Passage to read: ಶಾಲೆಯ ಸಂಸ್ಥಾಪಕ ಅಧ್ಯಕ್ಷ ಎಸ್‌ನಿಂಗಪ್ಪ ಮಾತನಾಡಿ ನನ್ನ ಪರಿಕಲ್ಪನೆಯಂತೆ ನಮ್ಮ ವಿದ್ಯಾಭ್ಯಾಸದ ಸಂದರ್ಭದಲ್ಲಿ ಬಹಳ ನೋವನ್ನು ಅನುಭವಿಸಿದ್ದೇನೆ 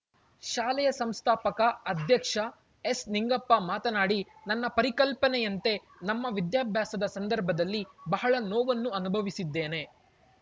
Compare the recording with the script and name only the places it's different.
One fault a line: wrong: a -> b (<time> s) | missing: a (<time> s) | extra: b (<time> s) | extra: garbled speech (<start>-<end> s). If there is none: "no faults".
no faults